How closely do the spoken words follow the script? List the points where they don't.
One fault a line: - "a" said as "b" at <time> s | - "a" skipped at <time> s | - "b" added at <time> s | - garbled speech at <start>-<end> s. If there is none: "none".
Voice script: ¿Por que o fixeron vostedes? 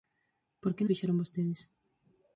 none